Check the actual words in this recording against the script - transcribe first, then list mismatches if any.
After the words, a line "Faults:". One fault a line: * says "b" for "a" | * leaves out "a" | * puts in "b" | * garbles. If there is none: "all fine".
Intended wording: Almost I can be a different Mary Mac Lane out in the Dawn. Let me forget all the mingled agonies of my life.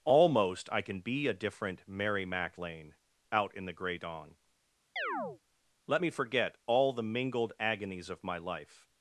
Almost I can be a different Mary Mac Lane out in the Gray Dawn. Let me forget all the mingled agonies of my life.
Faults:
* puts in "Gray"